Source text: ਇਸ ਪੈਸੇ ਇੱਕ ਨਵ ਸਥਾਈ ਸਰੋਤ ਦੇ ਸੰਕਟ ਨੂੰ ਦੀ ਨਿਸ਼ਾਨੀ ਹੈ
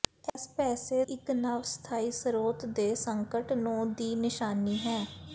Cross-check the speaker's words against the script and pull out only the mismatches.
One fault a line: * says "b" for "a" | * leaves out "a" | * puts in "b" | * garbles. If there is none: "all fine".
all fine